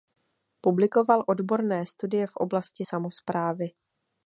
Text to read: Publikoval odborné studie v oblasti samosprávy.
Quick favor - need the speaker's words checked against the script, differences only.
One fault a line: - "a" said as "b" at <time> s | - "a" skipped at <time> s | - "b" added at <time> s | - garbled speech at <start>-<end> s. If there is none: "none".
none